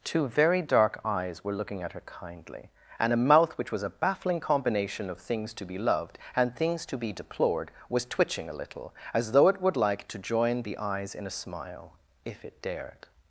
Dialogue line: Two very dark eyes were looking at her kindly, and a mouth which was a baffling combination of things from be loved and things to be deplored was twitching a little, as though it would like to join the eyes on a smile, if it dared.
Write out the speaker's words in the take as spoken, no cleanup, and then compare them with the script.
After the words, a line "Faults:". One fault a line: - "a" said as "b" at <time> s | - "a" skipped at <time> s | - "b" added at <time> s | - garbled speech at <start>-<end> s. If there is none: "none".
Two very dark eyes were looking at her kindly, and a mouth which was a baffling combination of things to be loved and things to be deplored was twitching a little, as though it would like to join the eyes in a smile, if it dared.
Faults:
- "from" said as "to" at 5.5 s
- "on" said as "in" at 11.1 s